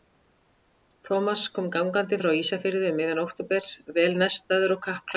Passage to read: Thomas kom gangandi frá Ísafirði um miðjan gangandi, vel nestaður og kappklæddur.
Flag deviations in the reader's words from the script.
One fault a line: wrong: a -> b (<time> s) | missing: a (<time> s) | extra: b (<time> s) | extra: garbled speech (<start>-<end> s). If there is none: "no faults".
wrong: gangandi -> október (3.3 s)